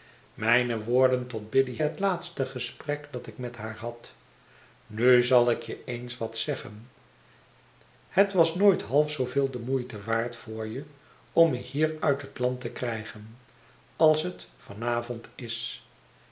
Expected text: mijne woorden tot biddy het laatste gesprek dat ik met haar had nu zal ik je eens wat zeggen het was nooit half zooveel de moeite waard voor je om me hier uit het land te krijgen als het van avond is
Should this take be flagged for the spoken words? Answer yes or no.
no